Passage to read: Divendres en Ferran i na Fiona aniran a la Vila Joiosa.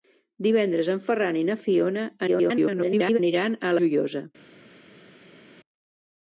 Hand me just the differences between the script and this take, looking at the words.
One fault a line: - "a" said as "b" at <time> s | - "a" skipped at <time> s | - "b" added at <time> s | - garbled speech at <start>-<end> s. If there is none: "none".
- garbled speech at 2.3-3.2 s
- "la Vila" skipped at 3.8 s